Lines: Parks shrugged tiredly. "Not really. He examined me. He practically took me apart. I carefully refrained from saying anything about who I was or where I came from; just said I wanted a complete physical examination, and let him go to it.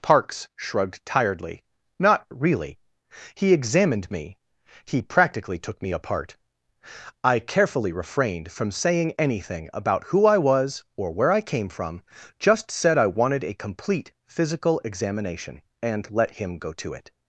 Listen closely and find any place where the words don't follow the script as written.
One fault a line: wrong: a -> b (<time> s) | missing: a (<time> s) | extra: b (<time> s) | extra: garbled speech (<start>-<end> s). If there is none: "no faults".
no faults